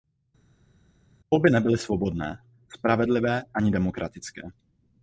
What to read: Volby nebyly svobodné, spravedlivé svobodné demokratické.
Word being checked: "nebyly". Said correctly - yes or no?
yes